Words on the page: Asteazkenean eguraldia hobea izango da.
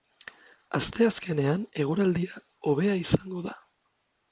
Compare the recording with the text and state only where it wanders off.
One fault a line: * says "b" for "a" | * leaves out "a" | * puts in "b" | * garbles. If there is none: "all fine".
all fine